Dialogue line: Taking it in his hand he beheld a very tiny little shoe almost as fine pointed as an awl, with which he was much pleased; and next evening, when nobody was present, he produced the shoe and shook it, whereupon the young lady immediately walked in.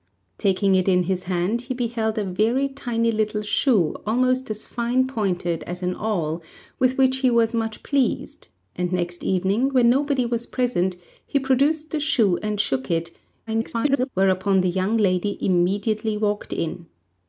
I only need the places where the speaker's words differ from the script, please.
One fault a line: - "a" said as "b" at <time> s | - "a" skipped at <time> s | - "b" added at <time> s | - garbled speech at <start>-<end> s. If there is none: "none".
- garbled speech at 13.5-14.1 s